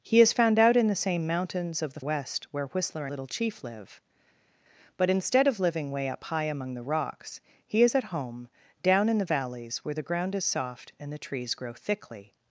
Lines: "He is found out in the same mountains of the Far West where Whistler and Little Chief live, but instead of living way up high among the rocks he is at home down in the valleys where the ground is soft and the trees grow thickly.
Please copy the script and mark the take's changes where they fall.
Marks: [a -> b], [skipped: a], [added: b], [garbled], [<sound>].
"He is found out in the same mountains of the [skipped: Far] West where Whistler [skipped: and] Little Chief live, but instead of living way up high among the rocks he is at home down in the valleys where the ground is soft and the trees grow thickly.